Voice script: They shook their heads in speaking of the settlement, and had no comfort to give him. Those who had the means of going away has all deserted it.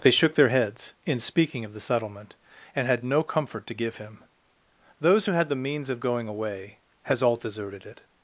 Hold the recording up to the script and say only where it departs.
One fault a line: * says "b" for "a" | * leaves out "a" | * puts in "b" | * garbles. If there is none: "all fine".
all fine